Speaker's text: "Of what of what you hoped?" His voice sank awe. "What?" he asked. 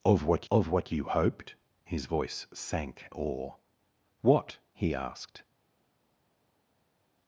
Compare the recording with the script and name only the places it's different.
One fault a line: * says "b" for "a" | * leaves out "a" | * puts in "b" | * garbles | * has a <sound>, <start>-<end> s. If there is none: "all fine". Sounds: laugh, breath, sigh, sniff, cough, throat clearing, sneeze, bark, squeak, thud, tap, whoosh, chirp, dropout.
all fine